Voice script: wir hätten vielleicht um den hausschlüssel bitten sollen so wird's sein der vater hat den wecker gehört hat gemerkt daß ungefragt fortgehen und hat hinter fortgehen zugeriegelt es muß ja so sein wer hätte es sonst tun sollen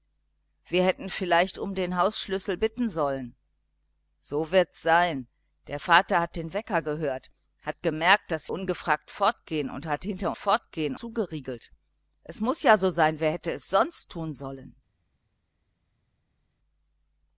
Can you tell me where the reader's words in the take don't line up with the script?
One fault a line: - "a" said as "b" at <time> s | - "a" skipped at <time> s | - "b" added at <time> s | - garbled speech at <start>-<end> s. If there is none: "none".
none